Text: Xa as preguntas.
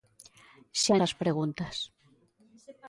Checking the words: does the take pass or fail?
pass